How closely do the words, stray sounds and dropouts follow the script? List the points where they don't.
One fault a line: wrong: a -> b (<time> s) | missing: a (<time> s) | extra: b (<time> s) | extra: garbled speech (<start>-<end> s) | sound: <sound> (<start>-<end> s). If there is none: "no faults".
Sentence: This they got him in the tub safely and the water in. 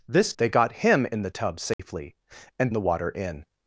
sound: dropout (1.7-1.8 s)